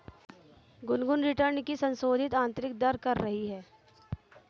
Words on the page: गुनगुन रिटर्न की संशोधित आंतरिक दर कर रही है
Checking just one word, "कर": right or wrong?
right